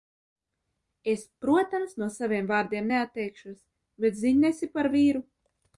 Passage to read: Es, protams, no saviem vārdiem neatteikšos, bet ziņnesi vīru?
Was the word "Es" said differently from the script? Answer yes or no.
no